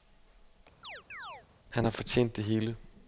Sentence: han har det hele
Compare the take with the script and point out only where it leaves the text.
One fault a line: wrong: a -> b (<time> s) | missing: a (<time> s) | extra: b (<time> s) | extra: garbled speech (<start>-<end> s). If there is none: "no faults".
extra: fortjent (1.9 s)